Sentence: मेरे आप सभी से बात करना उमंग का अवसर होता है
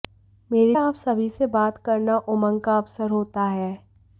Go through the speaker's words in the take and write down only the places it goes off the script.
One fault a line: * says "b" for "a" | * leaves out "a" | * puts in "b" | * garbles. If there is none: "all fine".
all fine